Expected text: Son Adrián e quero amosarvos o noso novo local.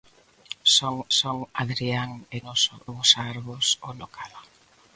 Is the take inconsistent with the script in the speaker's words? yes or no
yes